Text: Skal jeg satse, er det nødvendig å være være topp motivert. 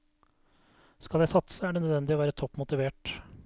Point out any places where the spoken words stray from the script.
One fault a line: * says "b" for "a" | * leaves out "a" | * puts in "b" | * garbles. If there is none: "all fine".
* leaves out "være"